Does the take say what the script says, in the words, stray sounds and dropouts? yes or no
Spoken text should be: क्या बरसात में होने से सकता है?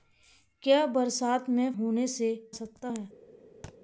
no